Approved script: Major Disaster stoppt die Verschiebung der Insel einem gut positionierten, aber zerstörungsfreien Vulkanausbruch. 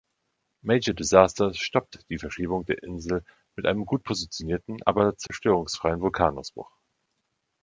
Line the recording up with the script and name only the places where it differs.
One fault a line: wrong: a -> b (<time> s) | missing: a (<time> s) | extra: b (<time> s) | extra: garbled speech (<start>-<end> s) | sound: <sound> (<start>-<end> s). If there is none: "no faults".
extra: mit (3.5 s)
sound: dropout (5.3-5.3 s)